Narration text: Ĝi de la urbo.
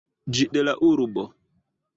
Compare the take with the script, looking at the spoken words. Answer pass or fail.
pass